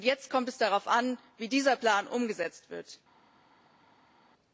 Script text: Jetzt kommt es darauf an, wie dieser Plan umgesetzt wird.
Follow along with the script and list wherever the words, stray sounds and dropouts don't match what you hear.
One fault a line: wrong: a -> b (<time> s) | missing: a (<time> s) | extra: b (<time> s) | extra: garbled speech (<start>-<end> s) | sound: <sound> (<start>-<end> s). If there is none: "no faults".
no faults